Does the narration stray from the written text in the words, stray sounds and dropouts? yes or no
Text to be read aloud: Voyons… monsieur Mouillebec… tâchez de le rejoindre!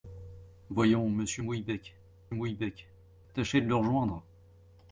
yes